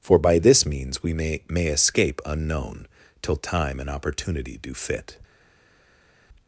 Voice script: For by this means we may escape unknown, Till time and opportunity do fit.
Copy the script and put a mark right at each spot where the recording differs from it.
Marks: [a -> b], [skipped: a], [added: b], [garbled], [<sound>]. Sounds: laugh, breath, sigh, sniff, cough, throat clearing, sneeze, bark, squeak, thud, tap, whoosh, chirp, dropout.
For by this means we may [added: may] escape unknown, Till time and opportunity do fit.